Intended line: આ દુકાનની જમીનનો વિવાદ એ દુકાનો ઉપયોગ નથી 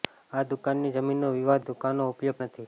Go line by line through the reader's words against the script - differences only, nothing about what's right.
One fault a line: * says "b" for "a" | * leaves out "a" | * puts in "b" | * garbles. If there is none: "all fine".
all fine